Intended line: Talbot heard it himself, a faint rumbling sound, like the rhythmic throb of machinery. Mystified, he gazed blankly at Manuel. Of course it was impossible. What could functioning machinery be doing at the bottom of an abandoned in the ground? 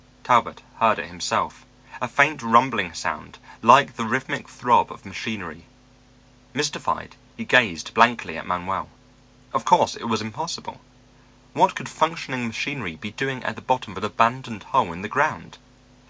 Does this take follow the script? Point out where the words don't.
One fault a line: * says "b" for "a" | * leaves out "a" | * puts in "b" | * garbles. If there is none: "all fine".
* puts in "hole"